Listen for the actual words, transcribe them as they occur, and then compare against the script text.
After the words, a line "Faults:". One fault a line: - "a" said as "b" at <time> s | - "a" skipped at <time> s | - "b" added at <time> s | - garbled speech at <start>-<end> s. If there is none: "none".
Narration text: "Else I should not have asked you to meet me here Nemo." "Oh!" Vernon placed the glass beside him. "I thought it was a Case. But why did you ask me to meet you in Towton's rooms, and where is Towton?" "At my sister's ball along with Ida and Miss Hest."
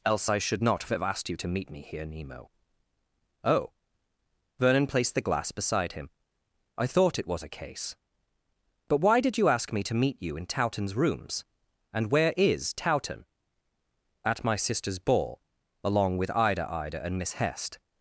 "Else I should not have asked you to meet me here Nemo." "Oh!" Vernon placed the glass beside him. "I thought it was a Case. But why did you ask me to meet you in Towton's rooms, and where is Towton?" "At my sister's ball along with Ida Ida and Miss Hest."
Faults:
- "Ida" added at 16.7 s